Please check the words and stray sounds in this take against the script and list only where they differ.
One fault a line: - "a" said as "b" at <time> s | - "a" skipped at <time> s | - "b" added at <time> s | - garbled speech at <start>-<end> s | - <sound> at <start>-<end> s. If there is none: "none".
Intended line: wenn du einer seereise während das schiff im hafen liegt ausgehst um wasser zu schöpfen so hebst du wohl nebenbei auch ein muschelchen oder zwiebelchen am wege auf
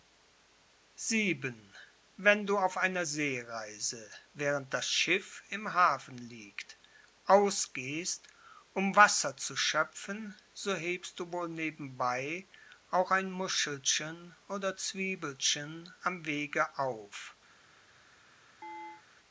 - "auf" added at 2.6 s
- chirp at 18.6-19.0 s